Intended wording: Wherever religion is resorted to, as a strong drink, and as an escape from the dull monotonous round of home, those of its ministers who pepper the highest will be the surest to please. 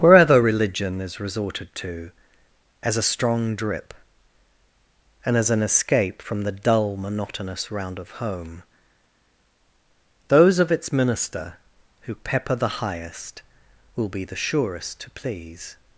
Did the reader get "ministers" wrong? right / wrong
wrong